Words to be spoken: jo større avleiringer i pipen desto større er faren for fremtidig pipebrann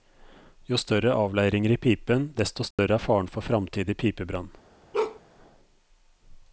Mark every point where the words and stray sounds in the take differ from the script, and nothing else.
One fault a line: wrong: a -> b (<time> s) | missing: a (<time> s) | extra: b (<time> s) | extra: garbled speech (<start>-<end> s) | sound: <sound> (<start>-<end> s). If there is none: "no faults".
sound: dropout (2.7-2.8 s)
sound: bark (4.9-5.2 s)